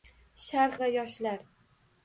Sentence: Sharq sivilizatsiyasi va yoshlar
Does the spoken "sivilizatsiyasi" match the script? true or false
false